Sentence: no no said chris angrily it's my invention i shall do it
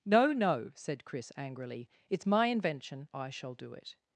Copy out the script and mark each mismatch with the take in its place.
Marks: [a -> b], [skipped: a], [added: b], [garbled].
no no said chris angrily it's my invention i shall do it